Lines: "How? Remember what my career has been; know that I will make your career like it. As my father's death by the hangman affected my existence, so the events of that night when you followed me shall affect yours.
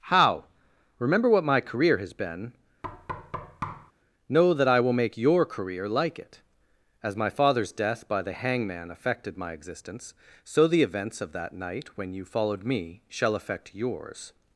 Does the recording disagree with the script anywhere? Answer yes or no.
no